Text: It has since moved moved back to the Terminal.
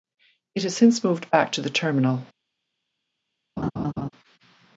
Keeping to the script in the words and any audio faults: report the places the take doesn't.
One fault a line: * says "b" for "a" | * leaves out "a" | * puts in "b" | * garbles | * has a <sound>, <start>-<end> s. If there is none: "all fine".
* leaves out "moved"
* has a laugh, 3.6-4.1 s